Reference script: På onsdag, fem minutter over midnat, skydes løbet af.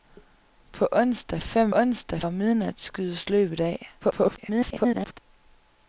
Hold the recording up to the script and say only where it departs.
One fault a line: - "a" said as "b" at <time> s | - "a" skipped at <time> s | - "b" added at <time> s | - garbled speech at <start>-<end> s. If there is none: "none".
- "minutter" said as "onsdag" at 1.7 s
- garbled speech at 4.0-5.2 s